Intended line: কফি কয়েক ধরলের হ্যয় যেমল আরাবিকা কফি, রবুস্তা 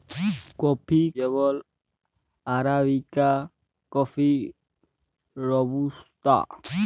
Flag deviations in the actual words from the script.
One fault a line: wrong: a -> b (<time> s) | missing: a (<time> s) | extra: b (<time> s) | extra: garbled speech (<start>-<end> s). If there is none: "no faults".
missing: কয়েক ধরলের হ্যয় (1.0 s)